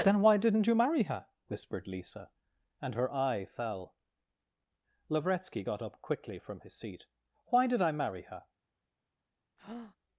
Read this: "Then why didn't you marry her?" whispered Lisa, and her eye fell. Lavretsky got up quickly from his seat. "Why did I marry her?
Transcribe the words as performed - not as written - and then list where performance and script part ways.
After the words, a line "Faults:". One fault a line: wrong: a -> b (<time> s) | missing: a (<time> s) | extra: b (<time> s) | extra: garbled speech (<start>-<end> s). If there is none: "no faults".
"Then why didn't you marry her?" whispered Lisa, and her eye fell. Lavretsky got up quickly from his seat. "Why did I marry her?
Faults:
no faults